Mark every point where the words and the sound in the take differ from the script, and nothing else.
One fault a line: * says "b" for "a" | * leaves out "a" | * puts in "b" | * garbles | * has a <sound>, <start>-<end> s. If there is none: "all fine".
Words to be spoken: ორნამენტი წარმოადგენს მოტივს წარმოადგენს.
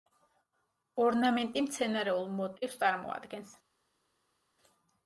* says "მცენარეულ" for "წარმოადგენს"